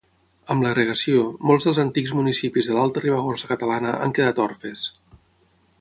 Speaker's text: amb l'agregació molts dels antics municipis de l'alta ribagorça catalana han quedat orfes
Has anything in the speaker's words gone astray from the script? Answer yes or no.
no